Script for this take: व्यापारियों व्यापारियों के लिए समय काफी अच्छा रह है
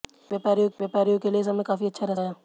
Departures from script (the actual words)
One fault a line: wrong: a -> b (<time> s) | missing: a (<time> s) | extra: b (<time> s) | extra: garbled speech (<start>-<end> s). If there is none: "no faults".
no faults